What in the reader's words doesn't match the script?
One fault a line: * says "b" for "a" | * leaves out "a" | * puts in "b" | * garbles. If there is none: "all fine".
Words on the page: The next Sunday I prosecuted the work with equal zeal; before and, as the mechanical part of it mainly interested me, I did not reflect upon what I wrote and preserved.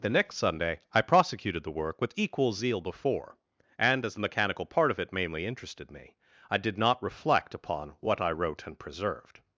all fine